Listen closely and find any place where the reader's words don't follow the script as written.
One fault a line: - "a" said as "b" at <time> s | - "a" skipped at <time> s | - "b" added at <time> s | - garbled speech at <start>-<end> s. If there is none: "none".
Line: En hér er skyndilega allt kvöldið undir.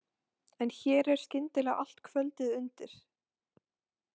none